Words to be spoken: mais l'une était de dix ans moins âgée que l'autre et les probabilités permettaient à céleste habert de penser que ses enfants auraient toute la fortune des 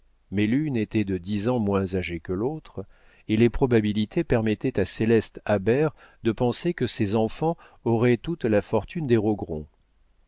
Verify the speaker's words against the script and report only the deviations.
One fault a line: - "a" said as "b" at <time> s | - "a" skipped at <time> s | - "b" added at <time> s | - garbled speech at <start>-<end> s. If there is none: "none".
none